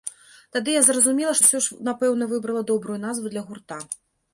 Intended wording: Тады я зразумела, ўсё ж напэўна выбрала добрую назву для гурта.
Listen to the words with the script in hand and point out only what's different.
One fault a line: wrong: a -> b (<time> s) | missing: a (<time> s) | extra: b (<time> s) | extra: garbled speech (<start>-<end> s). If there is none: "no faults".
no faults